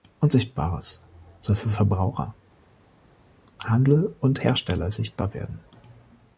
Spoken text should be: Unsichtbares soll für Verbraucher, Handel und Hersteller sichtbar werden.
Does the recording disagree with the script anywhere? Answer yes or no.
no